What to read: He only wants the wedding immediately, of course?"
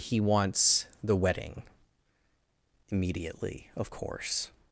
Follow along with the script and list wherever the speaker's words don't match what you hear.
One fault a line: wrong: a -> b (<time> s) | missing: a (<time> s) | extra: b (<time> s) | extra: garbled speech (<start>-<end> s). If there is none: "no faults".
missing: only (0.2 s)